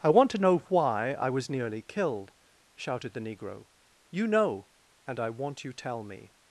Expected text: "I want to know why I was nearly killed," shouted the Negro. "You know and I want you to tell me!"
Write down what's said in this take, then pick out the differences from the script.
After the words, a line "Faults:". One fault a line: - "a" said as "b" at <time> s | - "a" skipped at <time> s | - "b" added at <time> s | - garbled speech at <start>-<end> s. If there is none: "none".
"I want to know why I was nearly killed," shouted the Negro. "You know and I want you tell me!"
Faults:
- "to" skipped at 5.7 s